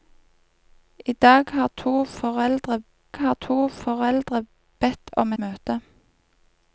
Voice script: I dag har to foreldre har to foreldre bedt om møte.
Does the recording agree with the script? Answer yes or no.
yes